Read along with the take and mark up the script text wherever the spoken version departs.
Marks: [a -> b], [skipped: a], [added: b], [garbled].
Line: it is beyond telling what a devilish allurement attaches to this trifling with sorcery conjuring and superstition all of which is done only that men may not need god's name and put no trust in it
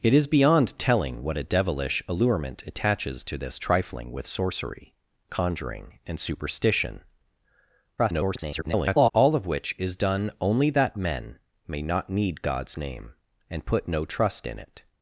it is beyond telling what a devilish allurement attaches to this trifling with sorcery conjuring and superstition [garbled] all of which is done only that men may not need god's name and put no trust in it